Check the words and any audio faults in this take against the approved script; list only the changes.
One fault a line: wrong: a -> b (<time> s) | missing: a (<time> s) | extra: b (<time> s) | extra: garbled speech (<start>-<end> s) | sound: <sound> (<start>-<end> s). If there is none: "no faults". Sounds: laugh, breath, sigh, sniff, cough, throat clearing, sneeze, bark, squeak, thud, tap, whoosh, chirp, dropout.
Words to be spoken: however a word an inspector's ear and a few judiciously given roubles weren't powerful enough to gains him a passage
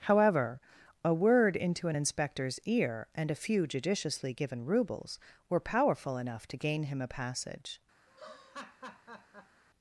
extra: into (1.6 s)
wrong: weren't -> were (5.5 s)
wrong: gains -> gain (6.6 s)
sound: laugh (8.1-9.6 s)